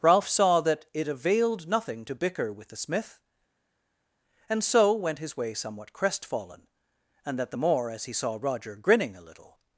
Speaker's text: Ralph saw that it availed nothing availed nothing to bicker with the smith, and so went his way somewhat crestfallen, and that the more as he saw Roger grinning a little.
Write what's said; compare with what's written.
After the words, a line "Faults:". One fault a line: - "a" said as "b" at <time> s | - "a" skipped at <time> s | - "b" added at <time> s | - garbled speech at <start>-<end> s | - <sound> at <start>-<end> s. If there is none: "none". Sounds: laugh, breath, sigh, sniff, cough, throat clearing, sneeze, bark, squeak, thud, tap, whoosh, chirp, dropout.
Ralph saw that it availed nothing to bicker with the smith, and so went his way somewhat crestfallen, and that the more as he saw Roger grinning a little.
Faults:
- "availed nothing" skipped at 2.0 s